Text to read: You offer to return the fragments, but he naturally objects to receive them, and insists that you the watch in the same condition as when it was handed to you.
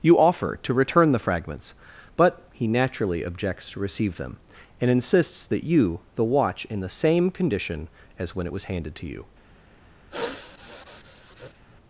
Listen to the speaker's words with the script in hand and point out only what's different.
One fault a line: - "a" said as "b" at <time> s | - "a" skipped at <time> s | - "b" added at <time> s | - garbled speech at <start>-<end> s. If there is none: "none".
none